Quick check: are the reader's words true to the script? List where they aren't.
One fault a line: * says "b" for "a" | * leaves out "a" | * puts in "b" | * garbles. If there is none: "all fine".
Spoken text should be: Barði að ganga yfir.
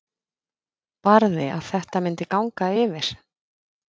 * puts in "þetta myndi"